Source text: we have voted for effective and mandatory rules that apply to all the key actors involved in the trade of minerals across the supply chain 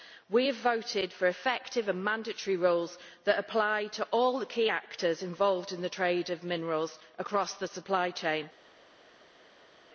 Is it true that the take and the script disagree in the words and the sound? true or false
false